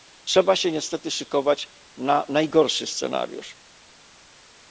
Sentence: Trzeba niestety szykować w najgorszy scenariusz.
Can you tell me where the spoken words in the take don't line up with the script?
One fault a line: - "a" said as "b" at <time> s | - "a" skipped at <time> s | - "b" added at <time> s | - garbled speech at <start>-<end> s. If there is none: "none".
- "się" added at 0.6 s
- "w" said as "na" at 2.0 s